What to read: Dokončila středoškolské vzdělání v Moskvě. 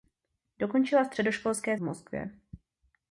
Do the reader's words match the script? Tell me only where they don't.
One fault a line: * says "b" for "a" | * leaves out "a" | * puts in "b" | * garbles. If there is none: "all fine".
* leaves out "vzdělání"